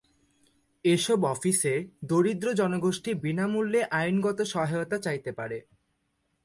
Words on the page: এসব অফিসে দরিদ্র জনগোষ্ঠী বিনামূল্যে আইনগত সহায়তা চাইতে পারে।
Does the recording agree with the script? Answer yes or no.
yes